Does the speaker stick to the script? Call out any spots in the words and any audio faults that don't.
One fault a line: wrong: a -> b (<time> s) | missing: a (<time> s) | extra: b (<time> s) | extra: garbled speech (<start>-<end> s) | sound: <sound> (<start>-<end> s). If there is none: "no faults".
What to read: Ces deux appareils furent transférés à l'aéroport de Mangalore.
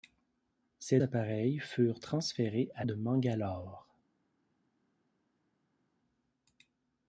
missing: deux (1.0 s)
missing: l'aéroport (2.8 s)